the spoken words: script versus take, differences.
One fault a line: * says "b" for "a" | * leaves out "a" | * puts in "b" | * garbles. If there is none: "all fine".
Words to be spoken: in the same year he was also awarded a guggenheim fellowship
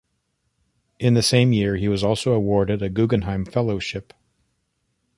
all fine